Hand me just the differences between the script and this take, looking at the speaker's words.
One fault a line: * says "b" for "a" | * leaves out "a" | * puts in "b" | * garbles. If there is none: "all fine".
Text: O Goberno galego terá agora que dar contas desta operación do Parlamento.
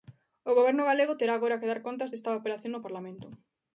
* says "no" for "do"